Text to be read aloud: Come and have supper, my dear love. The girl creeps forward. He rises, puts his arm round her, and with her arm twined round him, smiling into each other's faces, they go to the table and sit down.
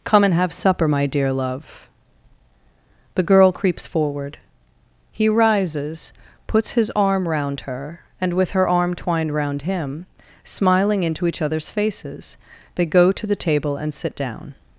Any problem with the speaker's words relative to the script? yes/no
no